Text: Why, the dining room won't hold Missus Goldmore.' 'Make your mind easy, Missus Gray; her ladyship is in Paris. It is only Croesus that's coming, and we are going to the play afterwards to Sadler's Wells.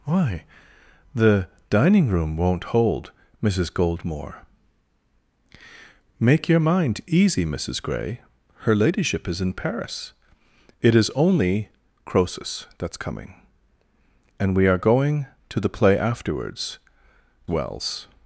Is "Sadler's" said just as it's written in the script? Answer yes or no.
no